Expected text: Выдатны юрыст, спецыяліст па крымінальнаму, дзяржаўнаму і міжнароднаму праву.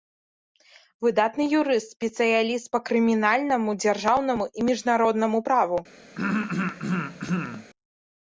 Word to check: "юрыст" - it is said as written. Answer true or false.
true